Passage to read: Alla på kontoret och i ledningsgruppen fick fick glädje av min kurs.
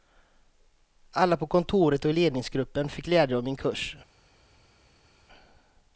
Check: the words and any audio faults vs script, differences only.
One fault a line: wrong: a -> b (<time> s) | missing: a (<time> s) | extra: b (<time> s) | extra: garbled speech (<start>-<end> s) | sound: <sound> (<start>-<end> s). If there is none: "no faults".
missing: fick (3.1 s)